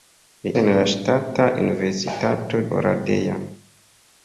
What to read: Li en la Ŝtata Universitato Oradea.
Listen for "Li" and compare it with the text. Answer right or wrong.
right